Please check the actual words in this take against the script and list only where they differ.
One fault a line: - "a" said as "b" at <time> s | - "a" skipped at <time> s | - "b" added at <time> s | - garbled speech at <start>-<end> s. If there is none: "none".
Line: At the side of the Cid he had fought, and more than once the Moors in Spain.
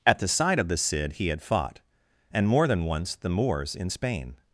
none